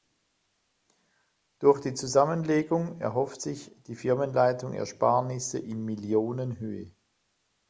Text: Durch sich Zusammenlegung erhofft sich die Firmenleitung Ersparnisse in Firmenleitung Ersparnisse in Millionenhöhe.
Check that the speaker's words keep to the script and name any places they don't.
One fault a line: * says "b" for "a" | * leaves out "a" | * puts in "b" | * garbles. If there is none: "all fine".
* says "die" for "sich"
* leaves out "Firmenleitung Ersparnisse in"